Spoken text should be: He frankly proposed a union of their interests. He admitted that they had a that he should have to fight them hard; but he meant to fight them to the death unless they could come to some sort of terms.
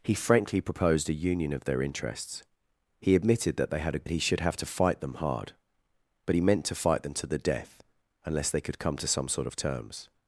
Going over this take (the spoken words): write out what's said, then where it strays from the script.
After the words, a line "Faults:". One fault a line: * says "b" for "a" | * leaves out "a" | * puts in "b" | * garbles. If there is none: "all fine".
He frankly proposed a union of their interests. He admitted that they had a that he should have to fight them hard; but he meant to fight them to the death unless they could come to some sort of terms.
Faults:
all fine